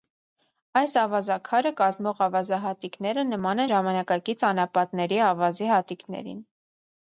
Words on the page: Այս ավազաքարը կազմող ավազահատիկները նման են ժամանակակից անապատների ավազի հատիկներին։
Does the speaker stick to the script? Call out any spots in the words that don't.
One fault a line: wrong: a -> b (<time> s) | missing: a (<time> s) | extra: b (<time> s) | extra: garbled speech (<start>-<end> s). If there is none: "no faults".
missing: են (3.6 s)